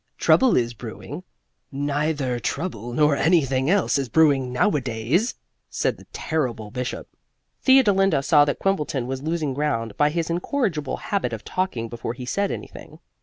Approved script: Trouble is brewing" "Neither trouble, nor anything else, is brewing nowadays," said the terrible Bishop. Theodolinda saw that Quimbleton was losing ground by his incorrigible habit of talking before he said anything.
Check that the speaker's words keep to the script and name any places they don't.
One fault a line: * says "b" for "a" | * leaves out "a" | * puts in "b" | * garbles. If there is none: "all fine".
all fine